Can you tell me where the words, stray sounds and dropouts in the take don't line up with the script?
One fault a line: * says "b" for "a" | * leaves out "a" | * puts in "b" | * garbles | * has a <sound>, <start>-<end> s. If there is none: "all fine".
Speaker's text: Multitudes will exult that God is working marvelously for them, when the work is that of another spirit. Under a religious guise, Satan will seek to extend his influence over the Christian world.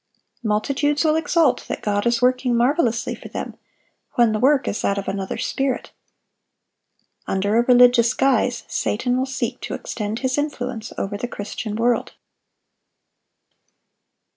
all fine